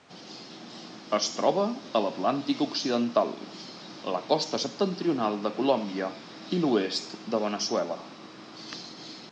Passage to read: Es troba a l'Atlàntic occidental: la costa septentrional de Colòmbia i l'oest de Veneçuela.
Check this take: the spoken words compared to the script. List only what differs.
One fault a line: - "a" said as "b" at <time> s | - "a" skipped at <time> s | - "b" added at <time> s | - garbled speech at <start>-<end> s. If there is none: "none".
none